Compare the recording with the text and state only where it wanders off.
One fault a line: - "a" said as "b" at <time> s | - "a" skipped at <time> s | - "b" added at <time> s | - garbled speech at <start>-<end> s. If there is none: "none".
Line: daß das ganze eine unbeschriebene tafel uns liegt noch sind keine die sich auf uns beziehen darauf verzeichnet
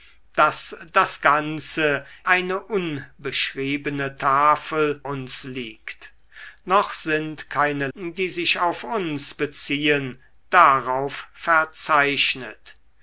none